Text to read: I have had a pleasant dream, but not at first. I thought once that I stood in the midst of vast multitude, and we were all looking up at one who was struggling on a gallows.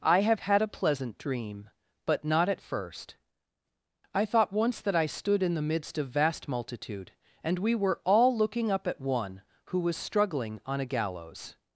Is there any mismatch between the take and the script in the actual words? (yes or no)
no